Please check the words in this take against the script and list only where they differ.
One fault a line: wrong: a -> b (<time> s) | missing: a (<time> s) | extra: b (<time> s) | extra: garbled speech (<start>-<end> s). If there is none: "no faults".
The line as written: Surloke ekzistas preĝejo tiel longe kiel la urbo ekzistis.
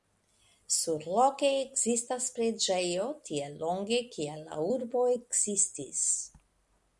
no faults